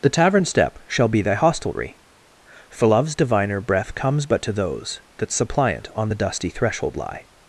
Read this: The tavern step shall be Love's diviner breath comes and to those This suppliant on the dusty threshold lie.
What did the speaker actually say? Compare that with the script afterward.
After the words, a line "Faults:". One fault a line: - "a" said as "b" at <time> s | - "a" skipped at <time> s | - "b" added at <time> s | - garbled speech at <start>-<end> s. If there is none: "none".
The tavern step shall be thy hostelry, For Love's diviner breath comes but to those That suppliant on the dusty threshold lie.
Faults:
- "thy hostelry For" added at 1.2 s
- "and" said as "but" at 4.3 s
- "This" said as "That" at 5.2 s